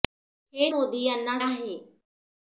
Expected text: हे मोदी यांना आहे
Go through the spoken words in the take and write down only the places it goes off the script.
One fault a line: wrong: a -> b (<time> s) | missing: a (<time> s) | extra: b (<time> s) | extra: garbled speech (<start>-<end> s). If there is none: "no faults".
no faults